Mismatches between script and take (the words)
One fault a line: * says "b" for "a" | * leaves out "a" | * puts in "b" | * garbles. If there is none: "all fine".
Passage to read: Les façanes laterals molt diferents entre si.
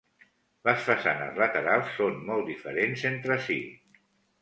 * puts in "són"